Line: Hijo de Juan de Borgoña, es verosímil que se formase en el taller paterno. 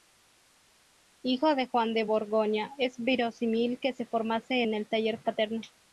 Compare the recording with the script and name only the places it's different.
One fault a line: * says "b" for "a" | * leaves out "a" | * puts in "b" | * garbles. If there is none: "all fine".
all fine